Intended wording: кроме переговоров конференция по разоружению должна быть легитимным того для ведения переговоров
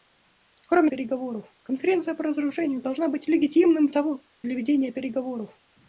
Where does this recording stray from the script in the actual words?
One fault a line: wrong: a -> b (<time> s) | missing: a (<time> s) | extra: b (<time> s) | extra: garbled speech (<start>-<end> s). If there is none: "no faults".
no faults